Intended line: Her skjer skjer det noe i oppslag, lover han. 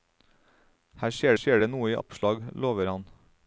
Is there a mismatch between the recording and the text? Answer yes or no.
no